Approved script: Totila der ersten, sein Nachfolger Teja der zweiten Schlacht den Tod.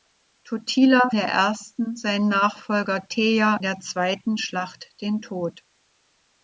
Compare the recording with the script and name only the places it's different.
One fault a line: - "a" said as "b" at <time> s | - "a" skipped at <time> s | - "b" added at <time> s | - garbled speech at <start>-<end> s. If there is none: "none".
none